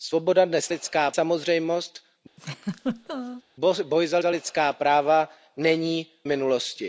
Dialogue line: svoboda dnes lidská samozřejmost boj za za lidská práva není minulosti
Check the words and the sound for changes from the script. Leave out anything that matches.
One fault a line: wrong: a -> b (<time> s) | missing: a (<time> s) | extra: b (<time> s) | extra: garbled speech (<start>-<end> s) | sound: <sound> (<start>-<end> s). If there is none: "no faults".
sound: laugh (2.4-3.4 s)